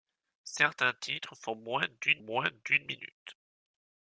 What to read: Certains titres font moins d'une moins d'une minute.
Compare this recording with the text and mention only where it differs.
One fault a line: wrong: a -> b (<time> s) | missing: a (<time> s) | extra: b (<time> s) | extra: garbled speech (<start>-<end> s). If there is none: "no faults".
no faults